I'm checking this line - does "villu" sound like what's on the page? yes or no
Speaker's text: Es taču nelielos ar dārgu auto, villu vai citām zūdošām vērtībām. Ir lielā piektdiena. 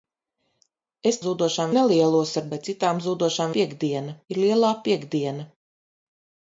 no